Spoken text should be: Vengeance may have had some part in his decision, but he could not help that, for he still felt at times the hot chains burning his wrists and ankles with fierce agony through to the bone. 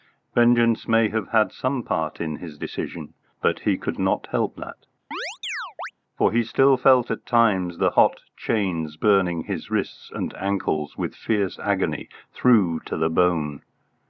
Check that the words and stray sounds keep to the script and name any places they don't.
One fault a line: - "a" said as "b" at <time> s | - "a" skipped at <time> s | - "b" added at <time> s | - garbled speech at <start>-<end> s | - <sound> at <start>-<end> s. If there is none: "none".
- chirp at 5.1-5.9 s